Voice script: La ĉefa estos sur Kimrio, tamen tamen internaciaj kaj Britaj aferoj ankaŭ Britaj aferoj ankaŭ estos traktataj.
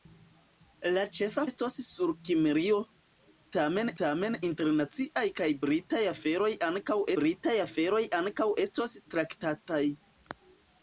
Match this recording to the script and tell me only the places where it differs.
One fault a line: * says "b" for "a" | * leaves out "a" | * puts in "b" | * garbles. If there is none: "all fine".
all fine